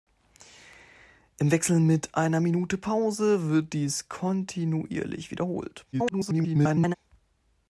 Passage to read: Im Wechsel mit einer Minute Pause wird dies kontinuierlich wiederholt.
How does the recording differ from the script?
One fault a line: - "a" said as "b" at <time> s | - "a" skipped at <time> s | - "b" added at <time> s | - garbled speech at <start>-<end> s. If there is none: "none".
- garbled speech at 5.9-6.9 s